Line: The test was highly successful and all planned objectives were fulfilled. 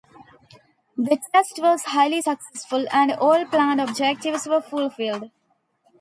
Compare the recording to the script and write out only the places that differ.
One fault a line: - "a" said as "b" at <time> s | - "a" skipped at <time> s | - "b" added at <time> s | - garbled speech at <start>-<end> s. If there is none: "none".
none